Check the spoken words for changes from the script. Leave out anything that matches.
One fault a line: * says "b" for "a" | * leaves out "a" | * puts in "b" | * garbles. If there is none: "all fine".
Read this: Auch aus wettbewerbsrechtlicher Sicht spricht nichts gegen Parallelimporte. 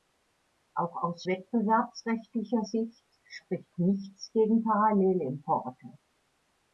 all fine